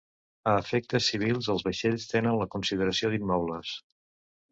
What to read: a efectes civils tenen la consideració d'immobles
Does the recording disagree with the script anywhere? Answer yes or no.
yes